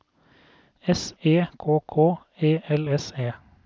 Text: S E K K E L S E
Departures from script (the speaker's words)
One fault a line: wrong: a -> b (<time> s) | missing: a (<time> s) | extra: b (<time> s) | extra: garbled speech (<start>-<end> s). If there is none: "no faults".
no faults